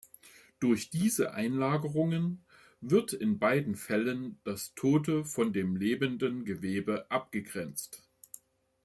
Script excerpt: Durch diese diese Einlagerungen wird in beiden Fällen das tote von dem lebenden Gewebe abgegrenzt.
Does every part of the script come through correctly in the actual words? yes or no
no